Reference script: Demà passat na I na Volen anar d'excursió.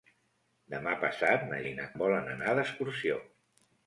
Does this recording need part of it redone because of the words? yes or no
no